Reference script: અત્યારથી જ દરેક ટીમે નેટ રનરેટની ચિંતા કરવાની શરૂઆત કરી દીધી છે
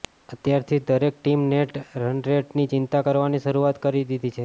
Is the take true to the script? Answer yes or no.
yes